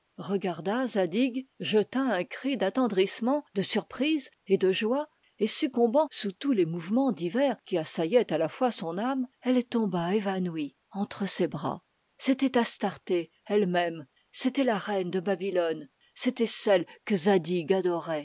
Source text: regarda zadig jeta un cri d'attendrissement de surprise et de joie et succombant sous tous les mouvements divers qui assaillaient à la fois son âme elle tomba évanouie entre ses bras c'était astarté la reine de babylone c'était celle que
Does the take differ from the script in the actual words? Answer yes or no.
yes